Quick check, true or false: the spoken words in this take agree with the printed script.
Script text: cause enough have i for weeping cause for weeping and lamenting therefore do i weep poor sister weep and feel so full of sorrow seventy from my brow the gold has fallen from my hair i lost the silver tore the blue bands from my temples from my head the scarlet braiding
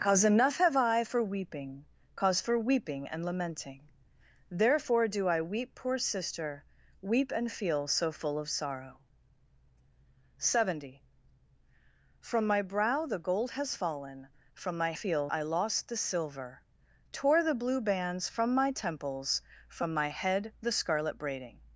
false